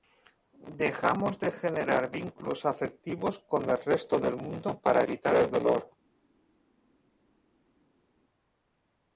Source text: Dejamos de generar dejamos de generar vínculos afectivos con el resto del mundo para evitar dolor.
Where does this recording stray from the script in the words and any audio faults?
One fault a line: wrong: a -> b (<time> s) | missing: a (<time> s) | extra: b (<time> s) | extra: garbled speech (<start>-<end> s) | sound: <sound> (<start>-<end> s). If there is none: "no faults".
missing: dejamos de generar (2.1 s)
extra: el (5.3 s)